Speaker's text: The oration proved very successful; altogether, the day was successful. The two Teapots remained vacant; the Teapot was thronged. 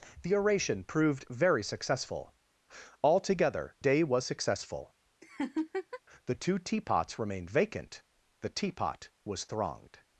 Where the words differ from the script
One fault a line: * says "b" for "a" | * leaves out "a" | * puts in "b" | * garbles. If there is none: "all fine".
* leaves out "the"